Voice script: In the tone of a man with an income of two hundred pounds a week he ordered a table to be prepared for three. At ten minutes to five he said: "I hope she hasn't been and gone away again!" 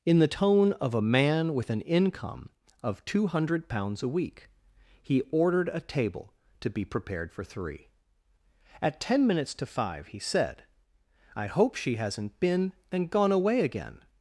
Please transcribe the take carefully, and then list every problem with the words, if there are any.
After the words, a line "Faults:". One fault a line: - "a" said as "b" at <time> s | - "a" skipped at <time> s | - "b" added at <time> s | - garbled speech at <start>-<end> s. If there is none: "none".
In the tone of a man with an income of two hundred pounds a week he ordered a table to be prepared for three. At ten minutes to five he said: "I hope she hasn't been and gone away again!"
Faults:
none